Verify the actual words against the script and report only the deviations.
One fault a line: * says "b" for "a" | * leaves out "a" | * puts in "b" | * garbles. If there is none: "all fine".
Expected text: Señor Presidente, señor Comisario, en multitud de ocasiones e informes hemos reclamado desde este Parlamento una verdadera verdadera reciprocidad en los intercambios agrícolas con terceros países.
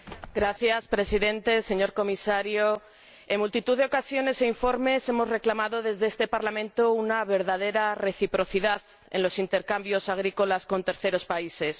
* leaves out "verdadera"